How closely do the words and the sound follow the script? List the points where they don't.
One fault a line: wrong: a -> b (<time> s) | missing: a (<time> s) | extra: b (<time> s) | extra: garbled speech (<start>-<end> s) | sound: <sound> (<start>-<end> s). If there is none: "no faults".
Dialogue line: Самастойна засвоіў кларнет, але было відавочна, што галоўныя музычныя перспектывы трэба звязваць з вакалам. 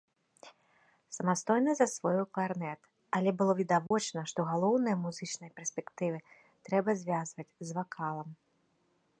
sound: dropout (3.9-3.9 s)